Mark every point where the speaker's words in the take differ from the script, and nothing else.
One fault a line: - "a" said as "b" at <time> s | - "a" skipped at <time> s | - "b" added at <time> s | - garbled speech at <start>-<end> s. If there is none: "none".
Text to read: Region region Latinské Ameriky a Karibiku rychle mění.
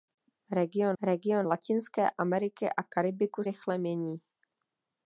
none